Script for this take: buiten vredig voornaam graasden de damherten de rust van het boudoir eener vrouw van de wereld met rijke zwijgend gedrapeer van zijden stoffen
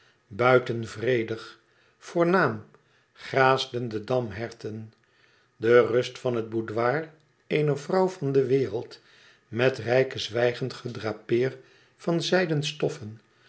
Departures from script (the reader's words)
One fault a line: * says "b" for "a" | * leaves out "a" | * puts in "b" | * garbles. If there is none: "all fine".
all fine